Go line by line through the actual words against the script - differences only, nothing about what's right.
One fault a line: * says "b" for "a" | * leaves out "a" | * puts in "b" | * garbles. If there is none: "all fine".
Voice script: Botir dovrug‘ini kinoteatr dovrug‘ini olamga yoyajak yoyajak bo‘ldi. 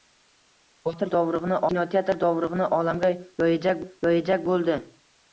all fine